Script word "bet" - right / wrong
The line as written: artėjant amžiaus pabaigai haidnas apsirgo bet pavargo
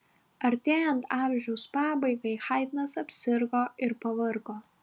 wrong